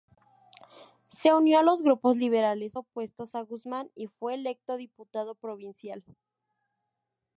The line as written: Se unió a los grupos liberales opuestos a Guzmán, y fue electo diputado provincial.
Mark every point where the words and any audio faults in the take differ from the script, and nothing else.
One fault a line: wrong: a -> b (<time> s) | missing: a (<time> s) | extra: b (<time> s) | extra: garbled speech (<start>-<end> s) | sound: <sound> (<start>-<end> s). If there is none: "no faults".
no faults